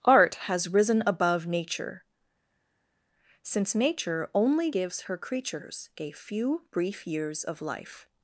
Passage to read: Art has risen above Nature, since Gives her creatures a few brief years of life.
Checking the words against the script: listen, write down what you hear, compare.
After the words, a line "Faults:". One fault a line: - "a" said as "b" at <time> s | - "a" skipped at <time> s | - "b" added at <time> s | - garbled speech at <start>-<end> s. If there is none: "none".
Art has risen above Nature, since Nature only gives her creatures a few brief years of life.
Faults:
- "Nature only" added at 3.7 s